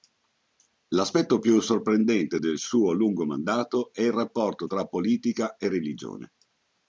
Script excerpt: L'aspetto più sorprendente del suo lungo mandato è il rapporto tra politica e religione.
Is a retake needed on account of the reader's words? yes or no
no